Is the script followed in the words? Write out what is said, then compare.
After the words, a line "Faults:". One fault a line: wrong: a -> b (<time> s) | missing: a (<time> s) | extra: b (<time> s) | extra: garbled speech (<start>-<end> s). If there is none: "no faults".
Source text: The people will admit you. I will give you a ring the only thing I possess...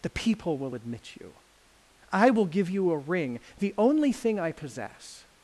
The people will admit you. I will give you a ring the only thing I possess...
Faults:
no faults